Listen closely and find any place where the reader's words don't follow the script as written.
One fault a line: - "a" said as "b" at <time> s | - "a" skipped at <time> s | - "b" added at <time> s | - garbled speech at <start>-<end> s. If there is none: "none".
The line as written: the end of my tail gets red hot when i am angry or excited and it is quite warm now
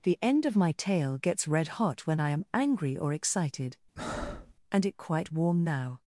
- "is" skipped at 5.0 s